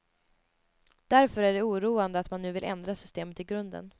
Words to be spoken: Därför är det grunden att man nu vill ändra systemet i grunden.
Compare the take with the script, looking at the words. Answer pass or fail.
fail